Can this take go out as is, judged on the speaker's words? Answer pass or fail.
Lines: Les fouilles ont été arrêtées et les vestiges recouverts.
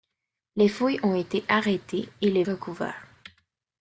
fail